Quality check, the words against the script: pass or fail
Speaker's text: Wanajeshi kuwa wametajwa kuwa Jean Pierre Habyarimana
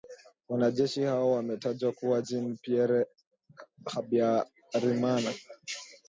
fail